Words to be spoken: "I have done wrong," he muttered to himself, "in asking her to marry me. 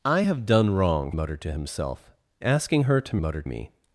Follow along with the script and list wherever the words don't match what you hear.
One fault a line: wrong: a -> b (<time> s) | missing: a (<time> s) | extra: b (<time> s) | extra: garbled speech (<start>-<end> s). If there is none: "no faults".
missing: he (1.1 s)
missing: in (2.1 s)
wrong: marry -> muttered (3.2 s)